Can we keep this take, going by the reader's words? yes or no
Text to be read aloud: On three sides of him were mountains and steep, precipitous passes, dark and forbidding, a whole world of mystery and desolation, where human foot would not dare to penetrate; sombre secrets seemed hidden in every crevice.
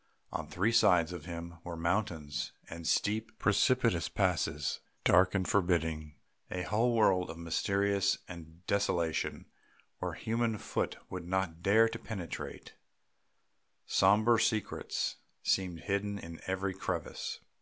yes